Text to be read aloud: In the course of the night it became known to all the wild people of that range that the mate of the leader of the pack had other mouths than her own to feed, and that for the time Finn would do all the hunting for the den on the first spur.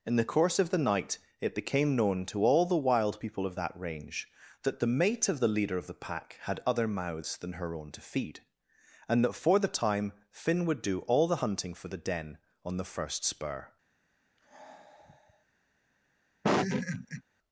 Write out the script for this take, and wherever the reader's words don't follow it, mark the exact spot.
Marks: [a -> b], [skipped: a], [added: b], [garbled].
In the course of the night it became known to all the wild people of that range that the mate of the leader of the pack had other mouths than her own to feed, and that for the time Finn would do all the hunting for the den on the first spur.